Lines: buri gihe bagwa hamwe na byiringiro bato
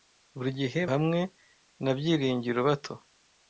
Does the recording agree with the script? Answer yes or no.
no